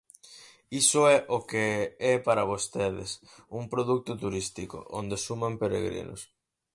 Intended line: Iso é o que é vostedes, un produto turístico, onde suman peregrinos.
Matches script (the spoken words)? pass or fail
fail